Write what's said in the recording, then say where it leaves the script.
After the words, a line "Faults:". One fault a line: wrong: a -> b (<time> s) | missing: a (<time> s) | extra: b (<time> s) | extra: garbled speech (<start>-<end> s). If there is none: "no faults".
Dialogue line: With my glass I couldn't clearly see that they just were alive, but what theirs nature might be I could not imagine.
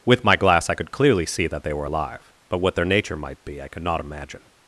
With my glass I could clearly see that they were alive, but what their nature might be I could not imagine.
Faults:
wrong: couldn't -> could (0.8 s)
missing: just (1.7 s)
wrong: theirs -> their (2.7 s)